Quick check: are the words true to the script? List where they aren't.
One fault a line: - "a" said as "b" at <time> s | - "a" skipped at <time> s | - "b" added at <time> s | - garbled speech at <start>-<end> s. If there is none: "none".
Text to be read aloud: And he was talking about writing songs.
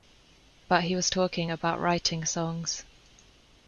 - "And" said as "But" at 0.7 s